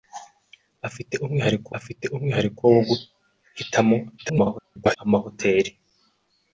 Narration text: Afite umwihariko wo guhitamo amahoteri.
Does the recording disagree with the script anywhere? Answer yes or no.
yes